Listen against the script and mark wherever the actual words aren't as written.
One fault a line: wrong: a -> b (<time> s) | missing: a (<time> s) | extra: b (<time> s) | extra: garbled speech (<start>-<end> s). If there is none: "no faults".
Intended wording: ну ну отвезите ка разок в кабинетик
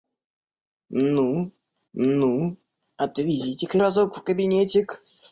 no faults